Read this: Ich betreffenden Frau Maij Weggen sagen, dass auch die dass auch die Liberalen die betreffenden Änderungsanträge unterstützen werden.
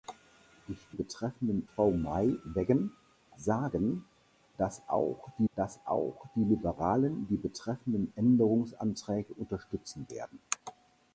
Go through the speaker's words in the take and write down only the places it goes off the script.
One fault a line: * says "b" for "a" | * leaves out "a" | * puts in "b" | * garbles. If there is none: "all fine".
all fine